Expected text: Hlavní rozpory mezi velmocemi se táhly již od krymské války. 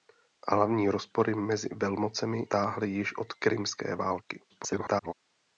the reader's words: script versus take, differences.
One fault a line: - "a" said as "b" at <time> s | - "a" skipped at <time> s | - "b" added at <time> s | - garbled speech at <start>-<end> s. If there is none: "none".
- "se" skipped at 2.5 s
- garbled speech at 4.5-5.1 s